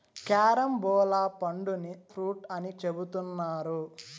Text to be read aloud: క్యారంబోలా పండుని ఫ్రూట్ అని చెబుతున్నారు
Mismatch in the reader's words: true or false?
false